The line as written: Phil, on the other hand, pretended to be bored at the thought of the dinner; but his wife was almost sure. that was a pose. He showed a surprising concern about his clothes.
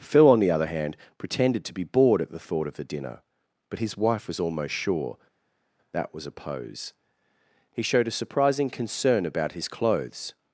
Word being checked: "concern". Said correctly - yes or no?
yes